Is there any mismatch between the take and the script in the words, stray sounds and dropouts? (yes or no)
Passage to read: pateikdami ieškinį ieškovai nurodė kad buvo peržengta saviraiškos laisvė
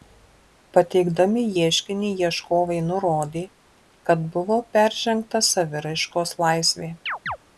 yes